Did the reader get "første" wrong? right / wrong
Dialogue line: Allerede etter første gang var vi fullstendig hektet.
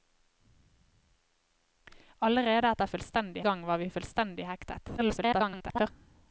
wrong